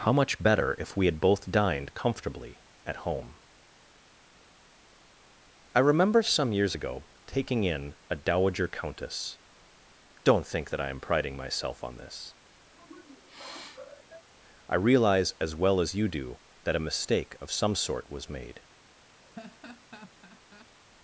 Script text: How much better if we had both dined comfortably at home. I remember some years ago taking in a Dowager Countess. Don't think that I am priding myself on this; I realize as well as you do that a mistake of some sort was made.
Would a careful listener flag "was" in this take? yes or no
no